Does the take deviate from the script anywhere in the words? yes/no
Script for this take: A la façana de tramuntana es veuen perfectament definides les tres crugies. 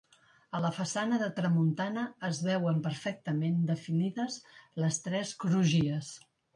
no